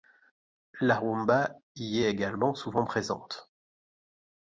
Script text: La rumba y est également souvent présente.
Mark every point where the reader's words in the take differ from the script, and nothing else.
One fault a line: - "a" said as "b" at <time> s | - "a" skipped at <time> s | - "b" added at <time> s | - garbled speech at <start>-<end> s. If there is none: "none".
none